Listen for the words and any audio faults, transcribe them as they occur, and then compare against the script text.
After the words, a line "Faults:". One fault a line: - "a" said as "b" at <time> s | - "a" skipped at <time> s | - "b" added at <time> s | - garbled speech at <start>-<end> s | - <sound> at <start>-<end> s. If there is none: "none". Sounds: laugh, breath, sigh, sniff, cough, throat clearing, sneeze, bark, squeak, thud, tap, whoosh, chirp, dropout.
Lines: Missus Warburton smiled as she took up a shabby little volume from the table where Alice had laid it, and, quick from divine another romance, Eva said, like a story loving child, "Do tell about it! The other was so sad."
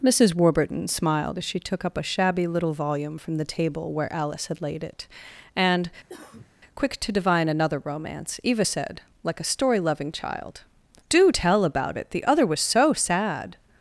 Missus Warburton smiled as she took up a shabby little volume from the table where Alice had laid it, and, quick to divine another romance, Eva said, like a story loving child, "Do tell about it! The other was so sad."
Faults:
- cough at 6.1-6.5 s
- "from" said as "to" at 7.0 s